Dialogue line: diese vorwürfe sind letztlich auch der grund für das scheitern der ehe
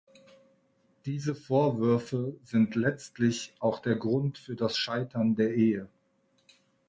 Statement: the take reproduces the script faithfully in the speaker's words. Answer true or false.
true